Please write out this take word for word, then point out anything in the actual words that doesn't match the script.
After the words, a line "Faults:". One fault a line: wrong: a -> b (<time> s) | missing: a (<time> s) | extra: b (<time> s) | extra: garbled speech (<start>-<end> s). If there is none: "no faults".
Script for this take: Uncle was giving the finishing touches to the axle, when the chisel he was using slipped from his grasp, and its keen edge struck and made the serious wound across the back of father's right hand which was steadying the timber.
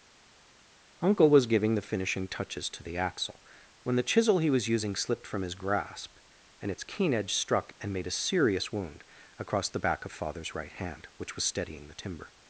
Uncle was giving the finishing touches to the axle, when the chisel he was using slipped from his grasp, and its keen edge struck and made a serious wound across the back of father's right hand which was steadying the timber.
Faults:
wrong: the -> a (8.1 s)